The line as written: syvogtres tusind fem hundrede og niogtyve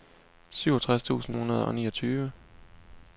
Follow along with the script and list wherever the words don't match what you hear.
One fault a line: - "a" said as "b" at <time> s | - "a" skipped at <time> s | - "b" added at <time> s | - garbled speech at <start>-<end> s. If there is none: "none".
- "fem" skipped at 1.4 s